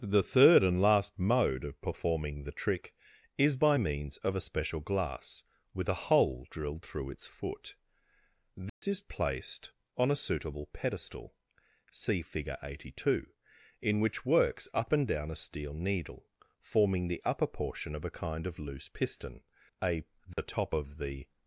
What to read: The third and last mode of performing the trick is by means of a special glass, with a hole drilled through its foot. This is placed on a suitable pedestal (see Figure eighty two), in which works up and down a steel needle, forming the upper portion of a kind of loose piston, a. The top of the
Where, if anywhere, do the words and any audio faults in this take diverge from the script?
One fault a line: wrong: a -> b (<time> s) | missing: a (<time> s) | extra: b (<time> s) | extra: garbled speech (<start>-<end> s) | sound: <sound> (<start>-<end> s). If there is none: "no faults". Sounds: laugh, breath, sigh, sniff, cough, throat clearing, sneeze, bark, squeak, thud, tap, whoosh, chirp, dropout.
sound: dropout (8.7-8.8 s)
sound: dropout (20.3-20.4 s)